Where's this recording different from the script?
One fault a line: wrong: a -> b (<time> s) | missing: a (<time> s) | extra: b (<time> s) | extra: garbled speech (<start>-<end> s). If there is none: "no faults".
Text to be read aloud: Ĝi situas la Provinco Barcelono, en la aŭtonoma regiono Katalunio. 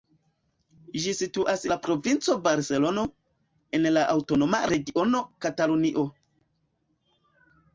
no faults